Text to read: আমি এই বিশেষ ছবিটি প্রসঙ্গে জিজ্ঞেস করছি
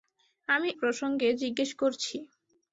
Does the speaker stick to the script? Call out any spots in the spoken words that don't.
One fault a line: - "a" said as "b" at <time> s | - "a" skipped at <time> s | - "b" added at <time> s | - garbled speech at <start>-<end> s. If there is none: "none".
- "এই বিশেষ ছবিটি" skipped at 0.7 s